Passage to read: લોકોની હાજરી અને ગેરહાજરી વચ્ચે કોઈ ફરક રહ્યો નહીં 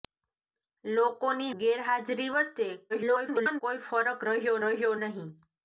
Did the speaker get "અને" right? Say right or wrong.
wrong